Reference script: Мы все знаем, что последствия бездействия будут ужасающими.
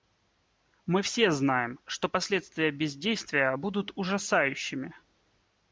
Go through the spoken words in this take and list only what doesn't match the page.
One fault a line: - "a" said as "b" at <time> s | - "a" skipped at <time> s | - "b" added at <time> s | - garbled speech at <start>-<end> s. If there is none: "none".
none